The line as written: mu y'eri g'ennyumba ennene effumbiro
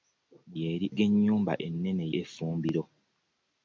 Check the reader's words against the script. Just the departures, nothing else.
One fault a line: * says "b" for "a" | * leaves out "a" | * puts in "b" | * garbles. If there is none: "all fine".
all fine